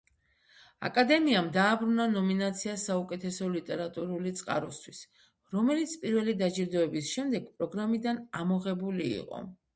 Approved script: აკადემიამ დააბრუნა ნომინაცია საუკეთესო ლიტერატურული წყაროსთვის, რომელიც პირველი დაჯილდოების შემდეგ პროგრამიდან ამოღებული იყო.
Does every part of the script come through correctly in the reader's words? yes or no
yes